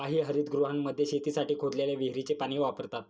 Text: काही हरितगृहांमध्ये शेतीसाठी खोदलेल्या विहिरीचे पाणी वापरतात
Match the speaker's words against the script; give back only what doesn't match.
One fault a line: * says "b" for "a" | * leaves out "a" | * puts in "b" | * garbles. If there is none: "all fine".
all fine